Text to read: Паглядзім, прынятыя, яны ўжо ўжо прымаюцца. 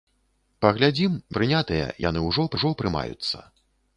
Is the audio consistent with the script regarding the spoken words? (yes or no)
yes